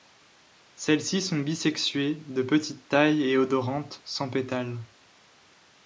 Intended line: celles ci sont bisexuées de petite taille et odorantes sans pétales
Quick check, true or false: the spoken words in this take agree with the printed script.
true